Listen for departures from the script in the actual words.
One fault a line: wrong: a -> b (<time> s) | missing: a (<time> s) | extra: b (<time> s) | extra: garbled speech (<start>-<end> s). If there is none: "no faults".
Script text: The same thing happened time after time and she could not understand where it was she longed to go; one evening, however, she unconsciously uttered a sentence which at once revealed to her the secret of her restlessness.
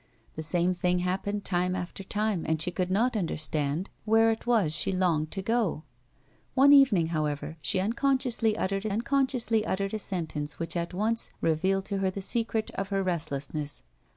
extra: unconsciously uttered (8.9 s)